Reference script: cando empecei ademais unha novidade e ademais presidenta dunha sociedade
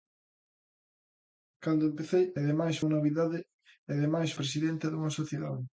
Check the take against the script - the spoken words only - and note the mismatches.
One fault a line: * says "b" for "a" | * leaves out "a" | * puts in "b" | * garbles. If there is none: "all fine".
all fine